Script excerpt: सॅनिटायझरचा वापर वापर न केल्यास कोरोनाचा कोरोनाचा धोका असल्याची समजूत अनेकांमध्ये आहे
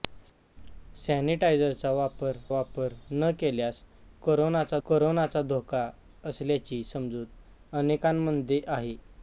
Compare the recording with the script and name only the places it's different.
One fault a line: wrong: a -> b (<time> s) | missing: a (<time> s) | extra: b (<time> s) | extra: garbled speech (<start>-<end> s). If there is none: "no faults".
no faults